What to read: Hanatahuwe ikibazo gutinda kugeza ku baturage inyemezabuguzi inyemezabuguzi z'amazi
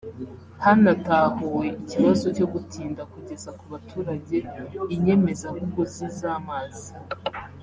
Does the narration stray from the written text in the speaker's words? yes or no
yes